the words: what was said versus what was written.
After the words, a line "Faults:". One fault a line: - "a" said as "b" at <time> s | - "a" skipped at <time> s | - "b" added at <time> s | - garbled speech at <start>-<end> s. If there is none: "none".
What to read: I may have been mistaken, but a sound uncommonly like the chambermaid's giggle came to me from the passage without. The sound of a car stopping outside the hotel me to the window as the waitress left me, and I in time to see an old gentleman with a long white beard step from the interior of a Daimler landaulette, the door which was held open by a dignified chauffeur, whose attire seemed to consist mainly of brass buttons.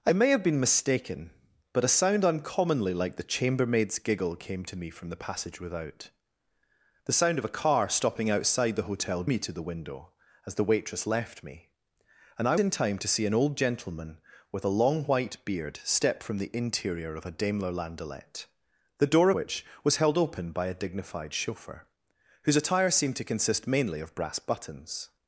I may have been mistaken, but a sound uncommonly like the chambermaid's giggle came to me from the passage without. The sound of a car stopping outside the hotel me to the window as the waitress left me, and I in time to see an old gentleman with a long white beard step from the interior of a Daimler landaulette, the door which was held open by a dignified chauffeur, whose attire seemed to consist mainly of brass buttons.
Faults:
none